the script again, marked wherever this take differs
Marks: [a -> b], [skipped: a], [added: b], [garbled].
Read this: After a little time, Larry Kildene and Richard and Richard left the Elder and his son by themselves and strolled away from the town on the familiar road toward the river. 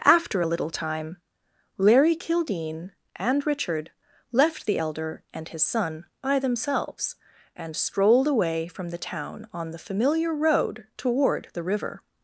After a little time, Larry Kildene and Richard [skipped: and Richard] left the Elder and his son by themselves and strolled away from the town on the familiar road toward the river.